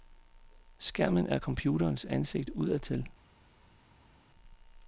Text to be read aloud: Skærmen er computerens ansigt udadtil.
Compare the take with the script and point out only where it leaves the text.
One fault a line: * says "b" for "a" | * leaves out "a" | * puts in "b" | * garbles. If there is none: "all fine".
all fine